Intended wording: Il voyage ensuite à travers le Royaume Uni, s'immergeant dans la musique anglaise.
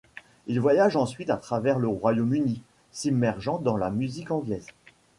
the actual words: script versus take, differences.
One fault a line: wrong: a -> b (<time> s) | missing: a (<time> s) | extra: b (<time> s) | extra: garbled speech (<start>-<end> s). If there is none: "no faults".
no faults